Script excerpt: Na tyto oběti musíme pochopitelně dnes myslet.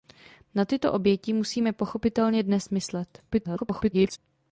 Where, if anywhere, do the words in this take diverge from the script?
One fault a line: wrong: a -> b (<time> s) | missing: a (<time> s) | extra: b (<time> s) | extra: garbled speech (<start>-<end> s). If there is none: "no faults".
extra: garbled speech (3.3-4.2 s)